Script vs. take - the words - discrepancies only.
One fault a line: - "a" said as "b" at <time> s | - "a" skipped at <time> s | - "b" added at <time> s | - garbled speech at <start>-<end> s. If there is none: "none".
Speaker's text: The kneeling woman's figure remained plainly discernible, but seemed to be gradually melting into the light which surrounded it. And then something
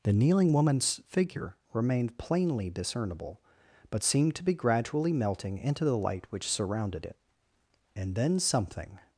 none